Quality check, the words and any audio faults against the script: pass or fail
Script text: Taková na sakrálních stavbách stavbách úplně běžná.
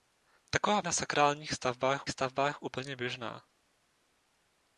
pass